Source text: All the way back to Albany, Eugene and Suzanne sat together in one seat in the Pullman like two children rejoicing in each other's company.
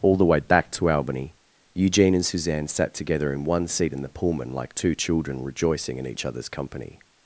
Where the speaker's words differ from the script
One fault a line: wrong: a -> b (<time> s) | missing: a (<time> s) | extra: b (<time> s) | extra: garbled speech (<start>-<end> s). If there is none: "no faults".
no faults